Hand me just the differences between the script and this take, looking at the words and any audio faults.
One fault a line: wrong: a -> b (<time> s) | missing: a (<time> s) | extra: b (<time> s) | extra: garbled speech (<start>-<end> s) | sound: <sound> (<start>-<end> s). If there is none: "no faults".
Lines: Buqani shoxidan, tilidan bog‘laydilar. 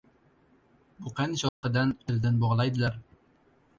sound: dropout (1.5-1.6 s)